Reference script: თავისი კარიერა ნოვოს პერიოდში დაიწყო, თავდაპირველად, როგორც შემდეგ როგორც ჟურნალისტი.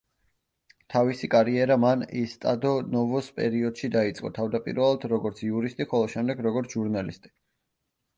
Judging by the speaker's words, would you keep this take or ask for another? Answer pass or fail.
fail